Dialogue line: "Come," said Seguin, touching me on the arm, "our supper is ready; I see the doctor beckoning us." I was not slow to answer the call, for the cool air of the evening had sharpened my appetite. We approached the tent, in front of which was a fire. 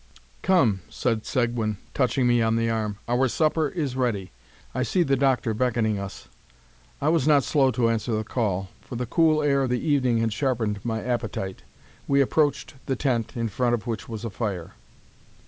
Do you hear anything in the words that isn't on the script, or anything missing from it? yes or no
no